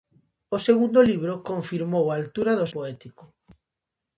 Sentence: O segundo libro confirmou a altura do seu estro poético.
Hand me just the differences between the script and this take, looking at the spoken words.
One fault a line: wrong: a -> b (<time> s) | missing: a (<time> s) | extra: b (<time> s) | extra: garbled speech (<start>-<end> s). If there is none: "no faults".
missing: seu estro (2.7 s)